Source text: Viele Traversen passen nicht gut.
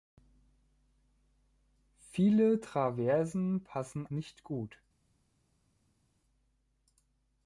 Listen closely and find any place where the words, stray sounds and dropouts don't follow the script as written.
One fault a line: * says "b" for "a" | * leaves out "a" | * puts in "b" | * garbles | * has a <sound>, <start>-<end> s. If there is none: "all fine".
all fine